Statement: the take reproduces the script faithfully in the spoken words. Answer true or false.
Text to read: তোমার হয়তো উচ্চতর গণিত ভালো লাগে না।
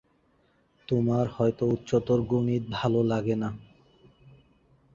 true